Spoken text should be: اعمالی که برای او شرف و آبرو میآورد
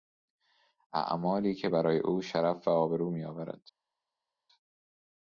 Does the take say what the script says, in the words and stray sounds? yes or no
yes